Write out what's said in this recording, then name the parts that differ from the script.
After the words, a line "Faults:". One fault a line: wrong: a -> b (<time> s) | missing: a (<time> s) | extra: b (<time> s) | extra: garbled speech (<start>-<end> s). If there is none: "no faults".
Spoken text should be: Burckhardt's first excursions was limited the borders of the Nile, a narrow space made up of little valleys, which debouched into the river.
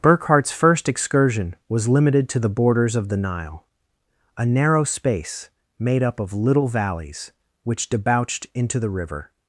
Burckhardt's first excursion was limited to the borders of the Nile, a narrow space made up of little valleys, which debouched into the river.
Faults:
wrong: excursions -> excursion (0.9 s)
extra: to (2.3 s)